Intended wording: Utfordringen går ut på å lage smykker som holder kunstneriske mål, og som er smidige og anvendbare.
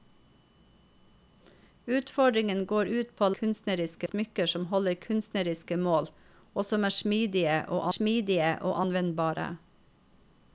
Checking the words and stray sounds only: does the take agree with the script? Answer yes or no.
no